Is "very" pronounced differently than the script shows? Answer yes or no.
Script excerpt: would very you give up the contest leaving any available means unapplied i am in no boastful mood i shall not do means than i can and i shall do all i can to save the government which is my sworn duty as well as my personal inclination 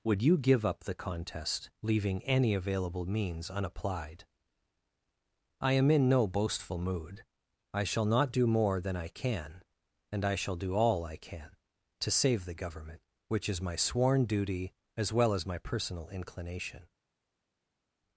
yes